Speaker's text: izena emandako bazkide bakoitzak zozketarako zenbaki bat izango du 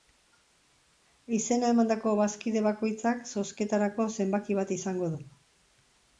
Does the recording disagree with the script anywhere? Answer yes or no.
no